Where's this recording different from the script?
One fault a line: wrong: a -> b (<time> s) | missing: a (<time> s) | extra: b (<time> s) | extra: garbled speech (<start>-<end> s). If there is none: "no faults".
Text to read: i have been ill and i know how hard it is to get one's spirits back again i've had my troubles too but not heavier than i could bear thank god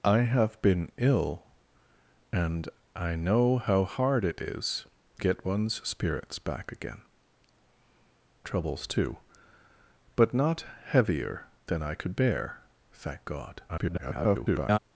missing: to (4.9 s)
missing: i've had my (7.0 s)
extra: garbled speech (13.7-14.8 s)